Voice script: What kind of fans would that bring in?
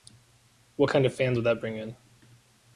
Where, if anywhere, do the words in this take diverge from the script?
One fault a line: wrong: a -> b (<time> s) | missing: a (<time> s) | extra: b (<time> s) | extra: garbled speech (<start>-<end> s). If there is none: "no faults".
no faults